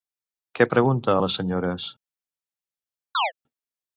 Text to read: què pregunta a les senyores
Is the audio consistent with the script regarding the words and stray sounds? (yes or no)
no